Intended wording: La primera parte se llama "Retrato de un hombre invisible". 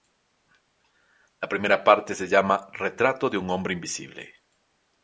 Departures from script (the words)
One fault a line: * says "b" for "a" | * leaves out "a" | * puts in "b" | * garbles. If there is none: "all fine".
all fine